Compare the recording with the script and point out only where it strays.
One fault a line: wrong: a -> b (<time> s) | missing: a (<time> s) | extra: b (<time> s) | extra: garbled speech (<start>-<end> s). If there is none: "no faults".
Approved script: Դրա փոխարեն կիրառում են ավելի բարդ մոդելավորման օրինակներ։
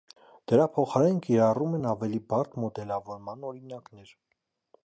no faults